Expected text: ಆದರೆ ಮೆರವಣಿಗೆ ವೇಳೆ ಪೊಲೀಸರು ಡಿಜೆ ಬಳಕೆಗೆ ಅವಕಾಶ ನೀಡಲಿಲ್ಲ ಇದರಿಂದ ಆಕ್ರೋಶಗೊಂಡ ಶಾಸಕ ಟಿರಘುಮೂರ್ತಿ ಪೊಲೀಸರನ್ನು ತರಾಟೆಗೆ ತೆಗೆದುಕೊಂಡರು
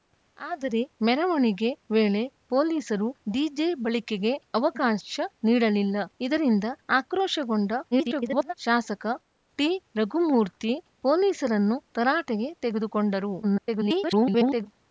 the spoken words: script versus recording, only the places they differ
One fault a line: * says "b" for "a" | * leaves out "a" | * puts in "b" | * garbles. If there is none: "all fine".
* garbles
* garbles